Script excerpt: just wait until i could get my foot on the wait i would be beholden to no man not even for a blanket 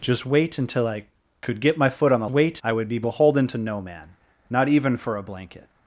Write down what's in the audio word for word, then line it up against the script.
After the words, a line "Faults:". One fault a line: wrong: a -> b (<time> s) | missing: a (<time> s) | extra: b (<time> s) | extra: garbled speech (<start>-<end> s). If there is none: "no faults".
just wait until i could get my foot on the wait i would be beholden to no man not even for a blanket
Faults:
no faults